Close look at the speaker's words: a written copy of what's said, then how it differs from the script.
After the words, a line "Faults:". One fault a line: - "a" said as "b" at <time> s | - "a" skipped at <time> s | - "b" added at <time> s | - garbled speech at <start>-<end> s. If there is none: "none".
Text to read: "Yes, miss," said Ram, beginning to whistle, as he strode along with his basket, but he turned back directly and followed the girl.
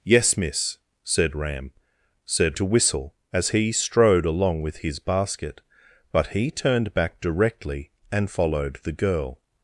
"Yes, miss," said Ram, said to whistle, as he strode along with his basket, but he turned back directly and followed the girl.
Faults:
- "beginning" said as "said" at 2.2 s